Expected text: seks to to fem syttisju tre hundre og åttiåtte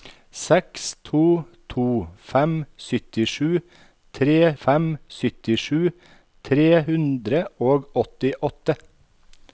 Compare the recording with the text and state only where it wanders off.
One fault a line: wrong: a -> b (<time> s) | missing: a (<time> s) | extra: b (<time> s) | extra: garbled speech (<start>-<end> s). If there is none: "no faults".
extra: fem syttisju tre (4.6 s)